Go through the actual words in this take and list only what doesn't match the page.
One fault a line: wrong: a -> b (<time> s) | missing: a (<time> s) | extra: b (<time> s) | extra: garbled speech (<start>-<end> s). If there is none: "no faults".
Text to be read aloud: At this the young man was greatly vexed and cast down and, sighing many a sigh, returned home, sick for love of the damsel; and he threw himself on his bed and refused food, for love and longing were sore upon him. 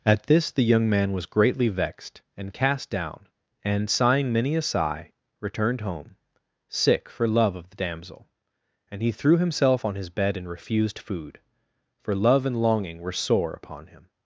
no faults